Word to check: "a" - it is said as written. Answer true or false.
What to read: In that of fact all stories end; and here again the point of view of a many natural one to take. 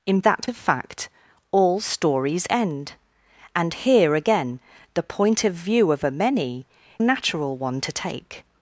true